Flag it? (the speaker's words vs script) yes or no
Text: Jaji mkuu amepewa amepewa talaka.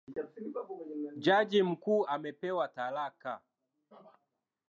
yes